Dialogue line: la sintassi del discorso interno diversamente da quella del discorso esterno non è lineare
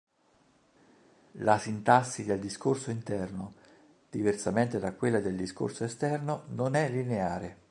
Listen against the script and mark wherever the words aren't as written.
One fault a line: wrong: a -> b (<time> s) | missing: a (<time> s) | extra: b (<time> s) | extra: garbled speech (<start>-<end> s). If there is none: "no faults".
no faults